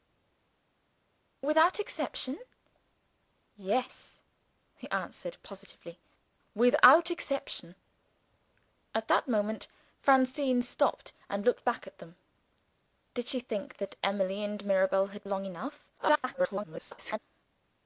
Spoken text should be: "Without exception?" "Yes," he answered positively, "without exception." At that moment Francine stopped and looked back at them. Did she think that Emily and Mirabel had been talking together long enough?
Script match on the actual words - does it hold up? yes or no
no